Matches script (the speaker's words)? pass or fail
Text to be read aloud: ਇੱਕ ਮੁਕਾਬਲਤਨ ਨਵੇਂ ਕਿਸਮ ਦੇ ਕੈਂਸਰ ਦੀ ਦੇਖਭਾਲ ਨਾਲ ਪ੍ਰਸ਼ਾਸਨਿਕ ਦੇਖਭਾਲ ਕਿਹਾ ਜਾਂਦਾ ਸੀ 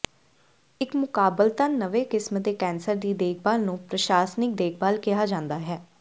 fail